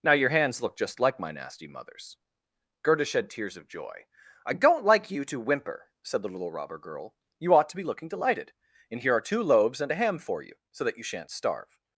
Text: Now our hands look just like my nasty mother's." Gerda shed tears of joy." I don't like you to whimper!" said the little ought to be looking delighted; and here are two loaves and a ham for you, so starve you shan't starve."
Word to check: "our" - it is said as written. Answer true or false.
false